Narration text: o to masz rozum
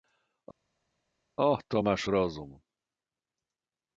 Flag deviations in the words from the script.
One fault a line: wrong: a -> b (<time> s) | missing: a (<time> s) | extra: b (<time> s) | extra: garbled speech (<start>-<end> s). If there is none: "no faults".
no faults